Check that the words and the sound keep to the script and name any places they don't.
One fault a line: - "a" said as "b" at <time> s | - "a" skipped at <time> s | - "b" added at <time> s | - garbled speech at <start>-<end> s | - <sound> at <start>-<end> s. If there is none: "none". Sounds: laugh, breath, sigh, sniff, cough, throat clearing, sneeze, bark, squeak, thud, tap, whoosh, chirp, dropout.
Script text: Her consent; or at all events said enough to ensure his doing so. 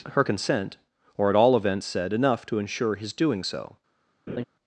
- laugh at 4.3-4.4 s